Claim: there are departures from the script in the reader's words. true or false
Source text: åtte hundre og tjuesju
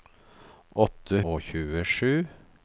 true